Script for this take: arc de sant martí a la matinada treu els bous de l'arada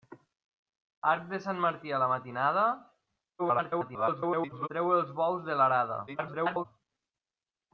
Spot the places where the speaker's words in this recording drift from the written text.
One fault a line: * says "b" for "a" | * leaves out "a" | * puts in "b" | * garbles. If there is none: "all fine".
* garbles
* garbles